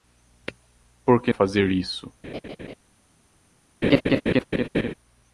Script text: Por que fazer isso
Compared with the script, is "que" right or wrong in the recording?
right